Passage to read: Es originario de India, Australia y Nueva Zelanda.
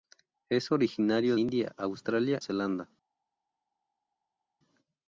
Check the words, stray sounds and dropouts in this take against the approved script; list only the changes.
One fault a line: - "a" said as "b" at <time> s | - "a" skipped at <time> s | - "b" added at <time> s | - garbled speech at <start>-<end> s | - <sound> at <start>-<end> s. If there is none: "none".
- "de" skipped at 1.4 s
- "y Nueva" skipped at 2.4 s